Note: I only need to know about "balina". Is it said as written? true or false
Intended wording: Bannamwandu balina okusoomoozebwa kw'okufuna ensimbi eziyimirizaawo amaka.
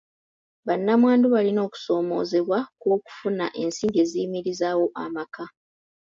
true